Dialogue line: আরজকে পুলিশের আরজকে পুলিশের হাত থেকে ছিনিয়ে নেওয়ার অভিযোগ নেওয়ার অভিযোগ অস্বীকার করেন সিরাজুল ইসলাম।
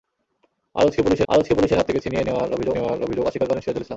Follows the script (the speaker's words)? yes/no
yes